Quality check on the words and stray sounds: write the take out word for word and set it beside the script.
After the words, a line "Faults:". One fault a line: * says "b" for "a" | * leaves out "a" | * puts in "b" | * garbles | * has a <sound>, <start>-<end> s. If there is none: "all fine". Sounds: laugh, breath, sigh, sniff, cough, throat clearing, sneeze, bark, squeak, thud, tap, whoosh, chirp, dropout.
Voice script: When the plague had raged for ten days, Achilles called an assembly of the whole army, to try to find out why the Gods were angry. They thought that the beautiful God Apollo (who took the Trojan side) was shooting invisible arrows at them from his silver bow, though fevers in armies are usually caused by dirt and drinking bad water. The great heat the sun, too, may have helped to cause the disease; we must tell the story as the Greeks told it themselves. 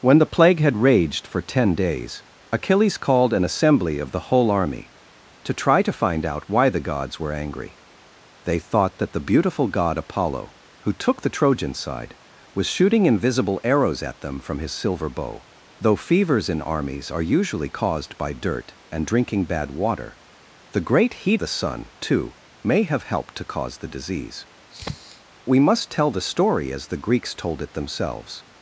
When the plague had raged for ten days, Achilles called an assembly of the whole army, to try to find out why the Gods were angry. They thought that the beautiful God Apollo (who took the Trojan side) was shooting invisible arrows at them from his silver bow, though fevers in armies are usually caused by dirt and drinking bad water. The great heat the sun, too, may have helped to cause the disease; we must tell the story as the Greeks told it themselves.
Faults:
* has a sniff, 24.7-25.2 s